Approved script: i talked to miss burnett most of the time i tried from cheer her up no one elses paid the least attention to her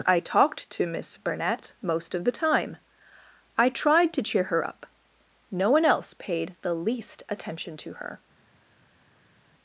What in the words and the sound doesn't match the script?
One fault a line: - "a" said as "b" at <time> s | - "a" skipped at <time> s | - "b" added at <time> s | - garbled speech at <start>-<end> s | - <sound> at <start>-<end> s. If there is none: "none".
- "from" said as "to" at 4.1 s
- "elses" said as "else" at 5.8 s